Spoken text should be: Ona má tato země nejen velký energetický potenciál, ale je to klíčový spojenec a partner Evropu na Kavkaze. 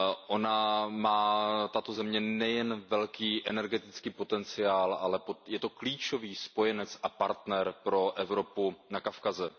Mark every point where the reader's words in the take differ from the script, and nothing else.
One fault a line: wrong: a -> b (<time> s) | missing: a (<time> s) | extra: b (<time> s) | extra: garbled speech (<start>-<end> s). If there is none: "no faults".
extra: pro (7.8 s)